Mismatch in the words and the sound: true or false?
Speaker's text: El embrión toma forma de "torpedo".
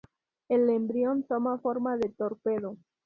false